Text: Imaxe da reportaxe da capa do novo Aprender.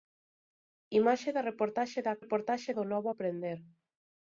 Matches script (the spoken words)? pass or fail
fail